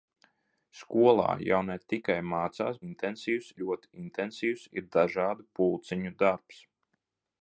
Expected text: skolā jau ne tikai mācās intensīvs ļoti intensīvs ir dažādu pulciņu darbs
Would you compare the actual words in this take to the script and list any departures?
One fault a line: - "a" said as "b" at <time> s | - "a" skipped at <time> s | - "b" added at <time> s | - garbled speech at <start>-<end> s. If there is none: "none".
none